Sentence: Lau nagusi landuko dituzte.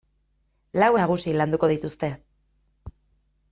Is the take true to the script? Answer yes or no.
yes